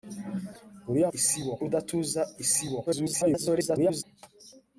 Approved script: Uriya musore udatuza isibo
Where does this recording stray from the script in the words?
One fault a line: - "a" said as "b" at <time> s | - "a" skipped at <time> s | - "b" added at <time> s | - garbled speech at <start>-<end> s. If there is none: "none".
- "musore" said as "isibo" at 1.2 s
- garbled speech at 2.9-4.0 s